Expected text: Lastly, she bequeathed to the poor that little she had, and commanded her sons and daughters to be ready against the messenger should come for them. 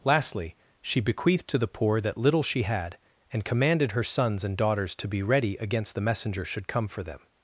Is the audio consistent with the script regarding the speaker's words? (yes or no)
yes